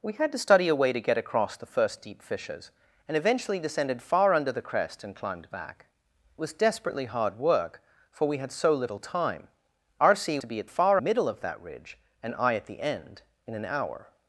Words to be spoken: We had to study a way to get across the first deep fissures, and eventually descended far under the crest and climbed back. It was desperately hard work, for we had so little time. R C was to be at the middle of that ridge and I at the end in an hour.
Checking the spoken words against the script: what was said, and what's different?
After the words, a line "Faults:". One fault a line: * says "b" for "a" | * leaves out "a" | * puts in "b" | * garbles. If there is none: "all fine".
We had to study a way to get across the first deep fissures, and eventually descended far under the crest and climbed back. Was desperately hard work, for we had so little time. R C to be at far middle of that ridge and I at the end in an hour.
Faults:
* leaves out "It"
* leaves out "was"
* says "far" for "the"